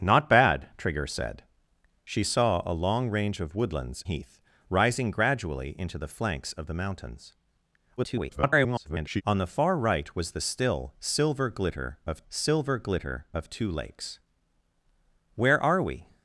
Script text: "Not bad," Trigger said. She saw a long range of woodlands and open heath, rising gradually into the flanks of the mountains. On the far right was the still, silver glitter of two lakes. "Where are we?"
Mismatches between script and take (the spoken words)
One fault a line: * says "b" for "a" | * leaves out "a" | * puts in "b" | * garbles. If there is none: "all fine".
* leaves out "and open"
* garbles
* puts in "silver glitter of"